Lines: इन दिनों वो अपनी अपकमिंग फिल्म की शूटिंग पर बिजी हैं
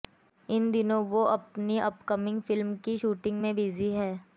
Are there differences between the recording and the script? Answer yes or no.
yes